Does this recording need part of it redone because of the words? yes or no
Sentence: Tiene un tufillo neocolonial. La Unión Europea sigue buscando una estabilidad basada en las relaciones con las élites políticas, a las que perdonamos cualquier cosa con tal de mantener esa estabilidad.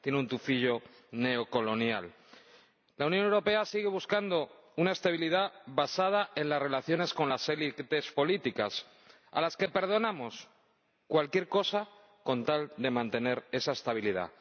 no